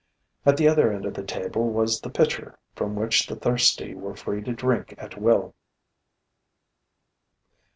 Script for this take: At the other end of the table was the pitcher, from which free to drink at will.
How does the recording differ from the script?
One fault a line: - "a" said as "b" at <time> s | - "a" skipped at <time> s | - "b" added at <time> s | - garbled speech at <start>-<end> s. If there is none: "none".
- "the thirsty were" added at 3.3 s